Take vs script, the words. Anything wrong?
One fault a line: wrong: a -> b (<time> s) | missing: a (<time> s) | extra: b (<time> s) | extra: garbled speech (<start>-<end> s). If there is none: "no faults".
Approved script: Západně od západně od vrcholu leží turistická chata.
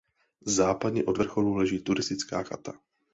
missing: západně od (1.2 s)